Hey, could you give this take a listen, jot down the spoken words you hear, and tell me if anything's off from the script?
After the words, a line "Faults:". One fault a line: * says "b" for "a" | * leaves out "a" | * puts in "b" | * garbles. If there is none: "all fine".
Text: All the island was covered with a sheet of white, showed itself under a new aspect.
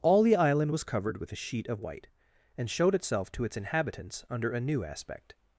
All the island was covered with a sheet of white, and showed itself to its inhabitants under a new aspect.
Faults:
* puts in "and"
* puts in "to its inhabitants"